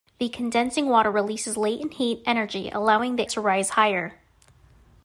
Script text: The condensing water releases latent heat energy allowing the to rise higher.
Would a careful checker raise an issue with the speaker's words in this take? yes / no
no